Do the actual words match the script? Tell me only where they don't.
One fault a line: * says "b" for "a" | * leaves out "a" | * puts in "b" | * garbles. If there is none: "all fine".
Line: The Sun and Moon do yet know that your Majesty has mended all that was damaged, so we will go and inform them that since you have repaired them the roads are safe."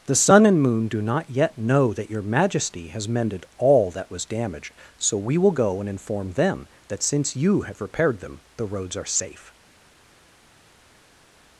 * puts in "not"